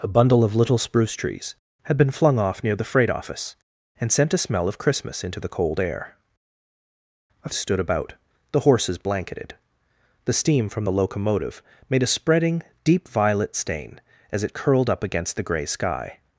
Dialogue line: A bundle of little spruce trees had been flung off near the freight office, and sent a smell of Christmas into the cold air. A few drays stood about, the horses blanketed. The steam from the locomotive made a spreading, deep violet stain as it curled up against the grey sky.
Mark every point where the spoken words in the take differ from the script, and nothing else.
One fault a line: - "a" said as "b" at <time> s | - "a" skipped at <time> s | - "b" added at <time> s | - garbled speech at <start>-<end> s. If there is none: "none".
- "few drays" skipped at 7.5 s